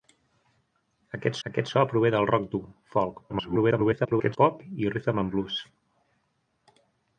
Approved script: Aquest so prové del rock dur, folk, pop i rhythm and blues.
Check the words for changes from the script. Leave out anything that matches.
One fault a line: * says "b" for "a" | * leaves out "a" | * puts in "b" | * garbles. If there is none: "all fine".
* puts in "aquest"
* garbles